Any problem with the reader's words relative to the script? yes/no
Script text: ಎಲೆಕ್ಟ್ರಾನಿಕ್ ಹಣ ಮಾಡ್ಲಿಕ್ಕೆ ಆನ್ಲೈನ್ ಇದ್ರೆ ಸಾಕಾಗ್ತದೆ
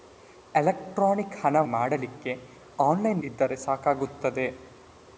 no